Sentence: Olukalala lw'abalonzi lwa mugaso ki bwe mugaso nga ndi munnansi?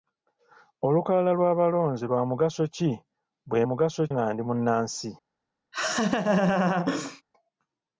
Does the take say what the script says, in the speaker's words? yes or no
yes